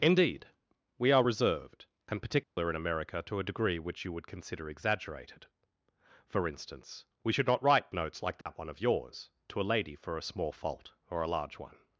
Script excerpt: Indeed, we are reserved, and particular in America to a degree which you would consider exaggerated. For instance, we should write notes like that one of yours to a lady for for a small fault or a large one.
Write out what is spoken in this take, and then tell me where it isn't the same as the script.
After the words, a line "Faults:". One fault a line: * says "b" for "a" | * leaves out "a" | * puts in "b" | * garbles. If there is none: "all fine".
Indeed, we are reserved, and particular in America to a degree which you would consider exaggerated. For instance, we should not write notes like that one of yours to a lady for a small fault or a large one.
Faults:
* puts in "not"
* leaves out "for"